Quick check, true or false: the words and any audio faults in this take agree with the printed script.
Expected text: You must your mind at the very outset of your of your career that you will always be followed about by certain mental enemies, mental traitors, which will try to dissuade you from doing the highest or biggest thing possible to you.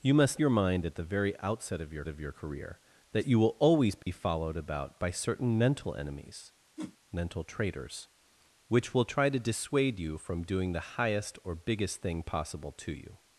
false